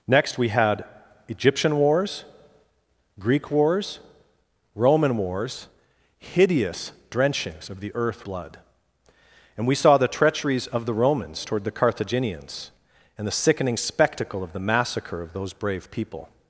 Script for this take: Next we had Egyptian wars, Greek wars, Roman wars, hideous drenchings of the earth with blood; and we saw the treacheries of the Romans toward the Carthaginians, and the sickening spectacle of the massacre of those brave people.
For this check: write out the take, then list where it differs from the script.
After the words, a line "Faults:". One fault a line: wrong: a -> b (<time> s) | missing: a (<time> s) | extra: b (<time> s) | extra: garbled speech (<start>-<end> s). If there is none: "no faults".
Next we had Egyptian wars, Greek wars, Roman wars, hideous drenchings of the earth blood; and we saw the treacheries of the Romans toward the Carthaginians, and the sickening spectacle of the massacre of those brave people.
Faults:
missing: with (8.2 s)